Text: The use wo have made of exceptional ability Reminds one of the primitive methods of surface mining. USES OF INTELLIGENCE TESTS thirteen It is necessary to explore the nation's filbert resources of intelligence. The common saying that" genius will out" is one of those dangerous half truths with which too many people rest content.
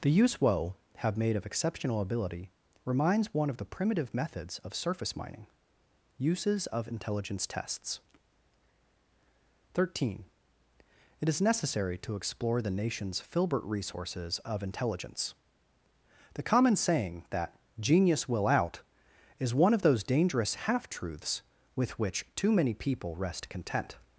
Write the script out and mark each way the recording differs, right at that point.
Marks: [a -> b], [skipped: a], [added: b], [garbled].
The use wo have made of exceptional ability Reminds one of the primitive methods of surface mining. USES OF INTELLIGENCE TESTS thirteen It is necessary to explore the nation's filbert resources of intelligence. The common saying that" genius will out" is one of those dangerous half truths with which too many people rest content.